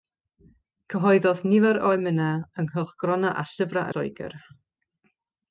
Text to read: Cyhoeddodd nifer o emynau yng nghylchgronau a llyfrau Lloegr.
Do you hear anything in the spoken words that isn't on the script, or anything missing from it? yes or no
no